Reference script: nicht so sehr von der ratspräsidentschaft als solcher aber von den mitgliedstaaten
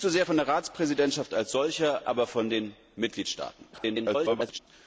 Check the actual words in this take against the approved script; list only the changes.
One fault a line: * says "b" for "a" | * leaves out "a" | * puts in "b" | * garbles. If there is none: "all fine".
* garbles